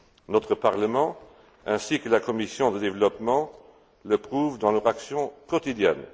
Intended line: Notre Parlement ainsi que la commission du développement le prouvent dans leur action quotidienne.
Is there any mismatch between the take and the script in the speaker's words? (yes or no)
no